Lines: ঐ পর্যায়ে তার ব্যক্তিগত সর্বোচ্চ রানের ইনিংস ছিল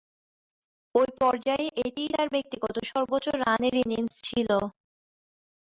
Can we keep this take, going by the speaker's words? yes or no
no